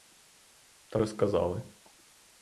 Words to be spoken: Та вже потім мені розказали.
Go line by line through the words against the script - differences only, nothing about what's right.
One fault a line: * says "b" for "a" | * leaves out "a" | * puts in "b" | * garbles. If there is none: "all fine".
* leaves out "вже потім мені"